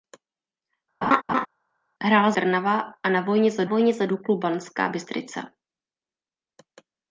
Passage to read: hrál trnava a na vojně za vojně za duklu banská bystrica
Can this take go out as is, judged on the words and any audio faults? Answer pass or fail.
fail